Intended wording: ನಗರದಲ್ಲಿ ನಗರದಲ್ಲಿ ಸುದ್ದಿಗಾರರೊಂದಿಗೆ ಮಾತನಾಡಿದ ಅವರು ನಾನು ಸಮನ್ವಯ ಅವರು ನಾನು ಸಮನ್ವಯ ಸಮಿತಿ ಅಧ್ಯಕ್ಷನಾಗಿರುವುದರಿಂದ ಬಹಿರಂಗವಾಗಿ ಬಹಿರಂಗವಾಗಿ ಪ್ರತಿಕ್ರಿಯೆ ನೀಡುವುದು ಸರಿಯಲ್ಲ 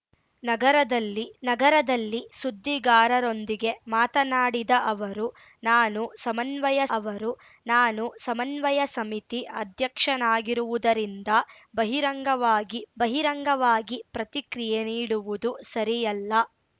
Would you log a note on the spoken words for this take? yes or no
no